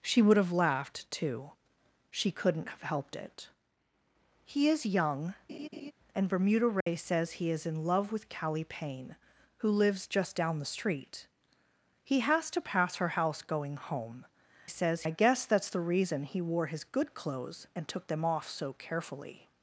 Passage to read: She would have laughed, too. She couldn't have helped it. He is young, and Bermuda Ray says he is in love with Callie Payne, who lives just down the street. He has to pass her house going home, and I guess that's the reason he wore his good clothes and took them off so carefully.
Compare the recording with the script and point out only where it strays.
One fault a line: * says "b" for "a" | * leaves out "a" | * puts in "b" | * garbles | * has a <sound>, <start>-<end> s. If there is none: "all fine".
* has a laugh, 5.5-5.9 s
* has a dropout, 6.8-6.9 s
* says "says" for "and"